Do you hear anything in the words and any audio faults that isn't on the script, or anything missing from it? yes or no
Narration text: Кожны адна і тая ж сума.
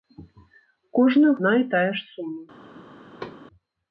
yes